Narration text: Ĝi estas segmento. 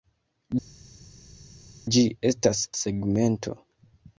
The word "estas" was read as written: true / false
true